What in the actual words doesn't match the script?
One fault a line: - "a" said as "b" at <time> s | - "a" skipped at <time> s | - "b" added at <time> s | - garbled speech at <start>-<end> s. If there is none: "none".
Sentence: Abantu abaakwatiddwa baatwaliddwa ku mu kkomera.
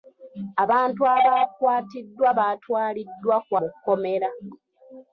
none